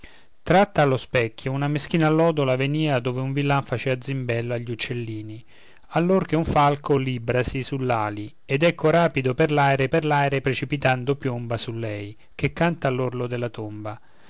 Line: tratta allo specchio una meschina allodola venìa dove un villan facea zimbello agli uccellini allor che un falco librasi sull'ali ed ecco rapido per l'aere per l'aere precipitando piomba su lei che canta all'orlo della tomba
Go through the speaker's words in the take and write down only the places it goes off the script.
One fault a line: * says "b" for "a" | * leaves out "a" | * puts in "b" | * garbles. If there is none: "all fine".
all fine